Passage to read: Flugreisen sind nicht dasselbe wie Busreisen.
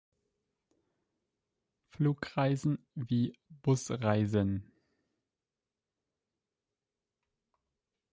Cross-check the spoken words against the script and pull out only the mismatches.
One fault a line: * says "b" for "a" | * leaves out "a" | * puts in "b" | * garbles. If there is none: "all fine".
* leaves out "sind nicht dasselbe"